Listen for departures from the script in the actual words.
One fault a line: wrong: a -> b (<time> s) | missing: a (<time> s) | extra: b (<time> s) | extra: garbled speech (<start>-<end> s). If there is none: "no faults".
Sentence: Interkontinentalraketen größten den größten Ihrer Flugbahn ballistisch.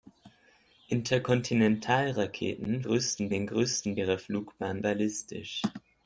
no faults